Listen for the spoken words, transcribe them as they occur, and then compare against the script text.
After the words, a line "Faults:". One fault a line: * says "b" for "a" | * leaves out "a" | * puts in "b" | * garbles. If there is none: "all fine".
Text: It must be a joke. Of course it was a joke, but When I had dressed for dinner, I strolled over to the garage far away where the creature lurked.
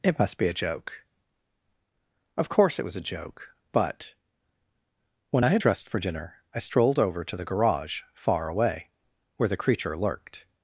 It must be a joke. Of course it was a joke, but When I had dressed for dinner, I strolled over to the garage far away where the creature lurked.
Faults:
all fine